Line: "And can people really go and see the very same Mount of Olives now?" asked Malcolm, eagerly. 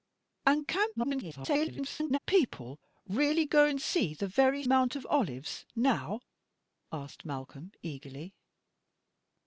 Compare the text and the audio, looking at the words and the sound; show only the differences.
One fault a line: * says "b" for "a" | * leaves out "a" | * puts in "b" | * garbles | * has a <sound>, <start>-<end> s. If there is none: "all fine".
* garbles
* leaves out "same"